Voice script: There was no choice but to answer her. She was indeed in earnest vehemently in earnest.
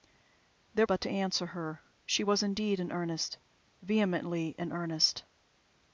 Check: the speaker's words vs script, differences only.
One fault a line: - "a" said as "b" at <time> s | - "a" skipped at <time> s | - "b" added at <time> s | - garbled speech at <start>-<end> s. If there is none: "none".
- "was no choice" skipped at 0.9 s